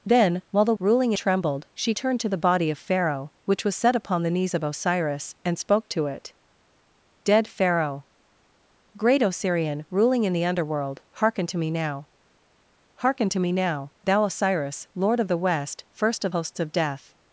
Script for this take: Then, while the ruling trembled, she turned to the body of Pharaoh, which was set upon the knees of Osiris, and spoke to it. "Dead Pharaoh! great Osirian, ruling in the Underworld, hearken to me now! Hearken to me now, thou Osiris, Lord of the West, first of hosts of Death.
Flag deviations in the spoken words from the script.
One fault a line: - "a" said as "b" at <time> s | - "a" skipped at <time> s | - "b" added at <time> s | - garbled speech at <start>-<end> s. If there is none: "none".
none